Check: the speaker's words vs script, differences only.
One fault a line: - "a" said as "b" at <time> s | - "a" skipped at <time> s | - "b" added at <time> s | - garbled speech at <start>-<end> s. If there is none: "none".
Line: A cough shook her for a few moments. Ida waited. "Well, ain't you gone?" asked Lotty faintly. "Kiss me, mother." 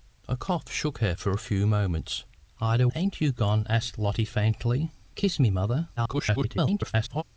- "waited Well" skipped at 2.9 s
- garbled speech at 6.0-7.2 s